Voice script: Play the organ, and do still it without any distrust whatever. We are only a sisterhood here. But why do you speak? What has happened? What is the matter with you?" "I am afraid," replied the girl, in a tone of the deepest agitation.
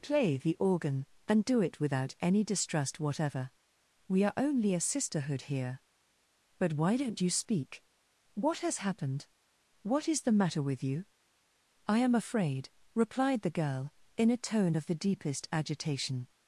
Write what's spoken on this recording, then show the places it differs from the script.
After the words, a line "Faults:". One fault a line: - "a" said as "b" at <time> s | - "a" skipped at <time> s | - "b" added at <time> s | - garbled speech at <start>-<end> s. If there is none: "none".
Play the organ, and do it without any distrust whatever. We are only a sisterhood here. But why don't you speak? What has happened? What is the matter with you?" "I am afraid," replied the girl, in a tone of the deepest agitation.
Faults:
- "still" skipped at 1.6 s
- "do" said as "don't" at 7.0 s